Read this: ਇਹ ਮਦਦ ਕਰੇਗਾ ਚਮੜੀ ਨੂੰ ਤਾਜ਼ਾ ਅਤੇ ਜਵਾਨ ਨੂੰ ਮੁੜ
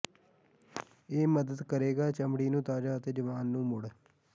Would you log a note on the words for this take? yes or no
no